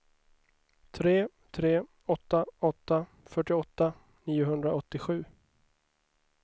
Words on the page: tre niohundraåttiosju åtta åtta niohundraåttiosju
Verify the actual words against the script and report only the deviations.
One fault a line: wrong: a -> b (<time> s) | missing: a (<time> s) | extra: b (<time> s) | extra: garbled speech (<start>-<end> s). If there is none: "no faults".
wrong: niohundraåttiosju -> tre (1.5 s)
extra: fyrtioåtta (3.2 s)